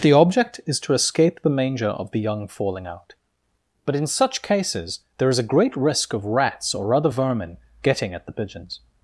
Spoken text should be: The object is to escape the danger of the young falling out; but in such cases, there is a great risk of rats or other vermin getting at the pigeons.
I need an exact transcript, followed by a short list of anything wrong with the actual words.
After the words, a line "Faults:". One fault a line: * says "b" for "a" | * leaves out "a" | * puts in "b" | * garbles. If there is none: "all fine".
The object is to escape the manger of the young falling out; but in such cases, there is a great risk of rats or other vermin getting at the pigeons.
Faults:
* says "manger" for "danger"